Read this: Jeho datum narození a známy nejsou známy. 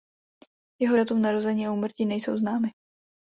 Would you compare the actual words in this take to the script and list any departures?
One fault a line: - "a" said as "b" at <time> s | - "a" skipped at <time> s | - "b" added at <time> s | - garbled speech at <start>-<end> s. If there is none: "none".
- "známy" said as "úmrtí" at 1.7 s